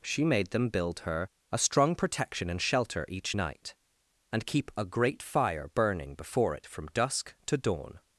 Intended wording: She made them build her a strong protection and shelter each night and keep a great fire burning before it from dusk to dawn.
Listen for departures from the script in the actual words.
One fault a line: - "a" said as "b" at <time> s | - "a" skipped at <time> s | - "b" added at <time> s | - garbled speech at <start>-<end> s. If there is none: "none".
none